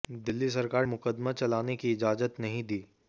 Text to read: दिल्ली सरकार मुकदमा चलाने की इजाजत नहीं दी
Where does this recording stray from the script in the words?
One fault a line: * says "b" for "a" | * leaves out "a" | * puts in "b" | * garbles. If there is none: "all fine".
all fine